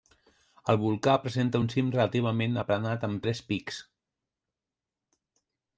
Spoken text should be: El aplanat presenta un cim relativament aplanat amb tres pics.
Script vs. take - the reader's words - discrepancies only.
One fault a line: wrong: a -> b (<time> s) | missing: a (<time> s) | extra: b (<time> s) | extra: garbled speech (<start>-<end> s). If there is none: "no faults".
wrong: aplanat -> volcà (0.8 s)